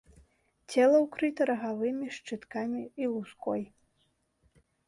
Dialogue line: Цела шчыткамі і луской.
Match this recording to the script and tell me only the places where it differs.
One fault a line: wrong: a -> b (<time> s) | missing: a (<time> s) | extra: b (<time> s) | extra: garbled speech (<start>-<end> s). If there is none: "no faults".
extra: ўкрыта рагавымі (1.0 s)